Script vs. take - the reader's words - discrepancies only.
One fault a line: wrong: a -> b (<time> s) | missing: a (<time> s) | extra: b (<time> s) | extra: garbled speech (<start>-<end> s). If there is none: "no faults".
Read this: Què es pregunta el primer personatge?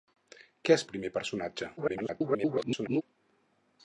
missing: pregunta (0.8 s)
extra: garbled speech (1.8-3.0 s)